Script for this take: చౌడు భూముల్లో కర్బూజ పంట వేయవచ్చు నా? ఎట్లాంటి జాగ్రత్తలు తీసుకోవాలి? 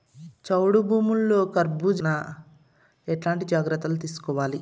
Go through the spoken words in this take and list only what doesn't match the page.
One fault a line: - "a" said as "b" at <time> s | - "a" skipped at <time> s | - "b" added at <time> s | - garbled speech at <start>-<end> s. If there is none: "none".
- "పంట వేయవచ్చు" skipped at 2.0 s